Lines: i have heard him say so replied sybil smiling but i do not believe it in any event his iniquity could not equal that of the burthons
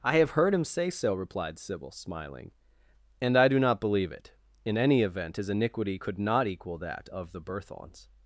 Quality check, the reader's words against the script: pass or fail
fail